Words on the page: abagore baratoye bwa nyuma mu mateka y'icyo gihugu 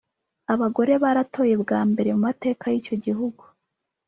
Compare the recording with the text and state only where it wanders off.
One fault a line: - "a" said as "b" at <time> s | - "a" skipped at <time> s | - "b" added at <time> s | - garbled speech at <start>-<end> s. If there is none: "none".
- "nyuma" said as "mbere" at 1.9 s